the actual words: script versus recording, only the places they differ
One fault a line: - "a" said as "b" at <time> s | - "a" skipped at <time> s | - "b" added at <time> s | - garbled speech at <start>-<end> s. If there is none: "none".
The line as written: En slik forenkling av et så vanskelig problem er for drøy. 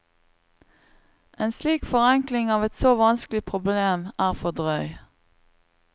none